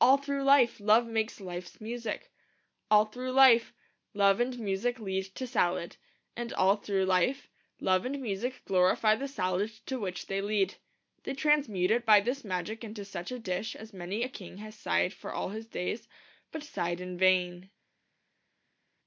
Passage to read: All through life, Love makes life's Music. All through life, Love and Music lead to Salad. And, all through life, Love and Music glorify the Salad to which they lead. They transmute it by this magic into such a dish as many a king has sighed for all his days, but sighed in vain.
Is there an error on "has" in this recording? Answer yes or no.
no